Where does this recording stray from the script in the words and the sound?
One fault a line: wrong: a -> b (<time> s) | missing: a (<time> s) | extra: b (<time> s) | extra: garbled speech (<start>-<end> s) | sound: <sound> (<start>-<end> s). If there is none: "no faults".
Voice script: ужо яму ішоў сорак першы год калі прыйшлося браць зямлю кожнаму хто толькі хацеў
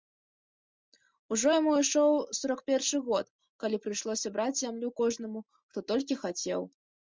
no faults